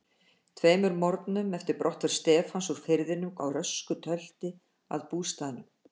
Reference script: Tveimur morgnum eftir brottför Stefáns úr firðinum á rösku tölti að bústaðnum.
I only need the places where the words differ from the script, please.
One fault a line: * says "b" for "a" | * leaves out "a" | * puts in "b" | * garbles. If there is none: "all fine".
all fine